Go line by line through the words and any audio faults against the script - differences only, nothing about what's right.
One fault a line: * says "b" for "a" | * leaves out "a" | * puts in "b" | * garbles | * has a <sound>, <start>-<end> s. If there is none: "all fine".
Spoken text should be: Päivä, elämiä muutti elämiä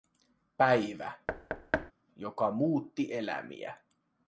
* has a thud, 1.3-1.9 s
* says "joka" for "elämiä"